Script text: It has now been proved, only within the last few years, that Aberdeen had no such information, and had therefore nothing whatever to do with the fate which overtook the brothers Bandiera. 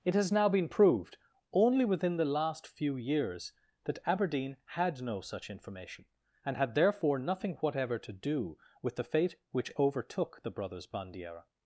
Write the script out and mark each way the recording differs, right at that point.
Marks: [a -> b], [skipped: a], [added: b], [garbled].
It has now been proved, only within the last few years, that Aberdeen had no such information, and had therefore nothing whatever to do with the fate which overtook the brothers Bandiera.